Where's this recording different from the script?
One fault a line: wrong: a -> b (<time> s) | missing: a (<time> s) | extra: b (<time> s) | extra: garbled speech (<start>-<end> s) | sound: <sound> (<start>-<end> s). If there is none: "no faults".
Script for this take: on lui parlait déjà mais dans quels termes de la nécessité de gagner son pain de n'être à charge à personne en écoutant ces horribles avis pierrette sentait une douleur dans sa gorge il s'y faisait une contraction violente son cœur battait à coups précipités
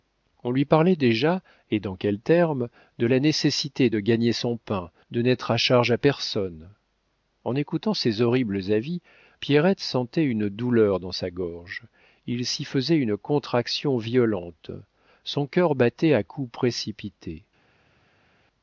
wrong: mais -> et (1.7 s)